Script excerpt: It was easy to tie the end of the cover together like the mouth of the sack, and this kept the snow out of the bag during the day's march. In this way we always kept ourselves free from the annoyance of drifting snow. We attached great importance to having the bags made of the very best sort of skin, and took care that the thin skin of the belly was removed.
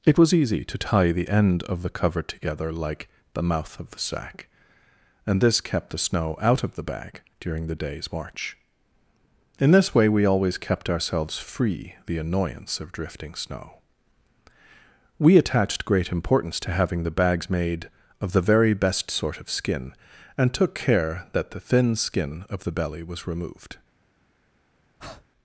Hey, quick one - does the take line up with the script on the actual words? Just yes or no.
no